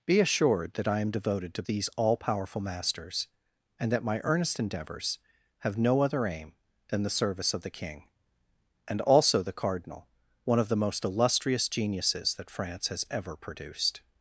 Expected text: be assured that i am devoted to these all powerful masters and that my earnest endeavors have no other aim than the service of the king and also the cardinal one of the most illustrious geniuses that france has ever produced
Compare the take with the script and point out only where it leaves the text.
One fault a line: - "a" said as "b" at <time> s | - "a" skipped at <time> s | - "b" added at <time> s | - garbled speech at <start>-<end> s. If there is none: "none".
none